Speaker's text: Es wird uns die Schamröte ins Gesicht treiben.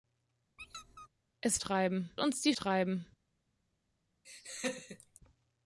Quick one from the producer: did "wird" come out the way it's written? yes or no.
no